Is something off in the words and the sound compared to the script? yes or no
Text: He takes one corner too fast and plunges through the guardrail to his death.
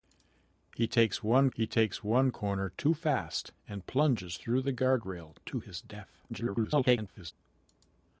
yes